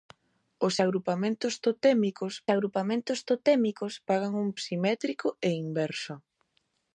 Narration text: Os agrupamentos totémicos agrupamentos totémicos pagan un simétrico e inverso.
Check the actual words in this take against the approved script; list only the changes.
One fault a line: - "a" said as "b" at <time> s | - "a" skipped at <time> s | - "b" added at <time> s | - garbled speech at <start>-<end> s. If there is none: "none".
none